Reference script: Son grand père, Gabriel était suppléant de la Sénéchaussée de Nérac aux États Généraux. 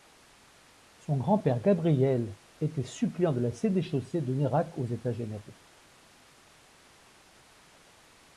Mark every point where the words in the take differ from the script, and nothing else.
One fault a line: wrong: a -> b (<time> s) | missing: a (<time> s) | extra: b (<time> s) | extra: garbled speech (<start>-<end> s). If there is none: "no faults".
no faults